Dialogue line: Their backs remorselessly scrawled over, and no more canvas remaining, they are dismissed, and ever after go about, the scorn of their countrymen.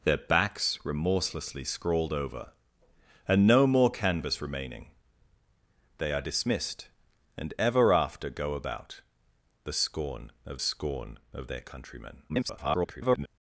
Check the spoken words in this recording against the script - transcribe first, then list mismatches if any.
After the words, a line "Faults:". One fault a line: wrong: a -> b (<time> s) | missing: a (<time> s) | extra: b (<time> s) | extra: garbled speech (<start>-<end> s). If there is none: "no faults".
Their backs remorselessly scrawled over, and no more canvas remaining, they are dismissed, and ever after go about, the scorn of scorn of their countrymen. [garbled]
Faults:
extra: scorn of (10.6 s)
extra: garbled speech (12.3-13.3 s)